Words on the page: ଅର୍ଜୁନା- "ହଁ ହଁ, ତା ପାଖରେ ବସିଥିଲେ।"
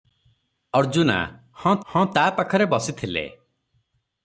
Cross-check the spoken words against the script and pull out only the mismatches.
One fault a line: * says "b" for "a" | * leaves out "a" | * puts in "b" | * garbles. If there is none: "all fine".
all fine